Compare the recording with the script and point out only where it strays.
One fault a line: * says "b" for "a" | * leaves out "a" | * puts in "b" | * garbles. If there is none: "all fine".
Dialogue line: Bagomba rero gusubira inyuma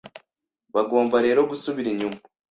all fine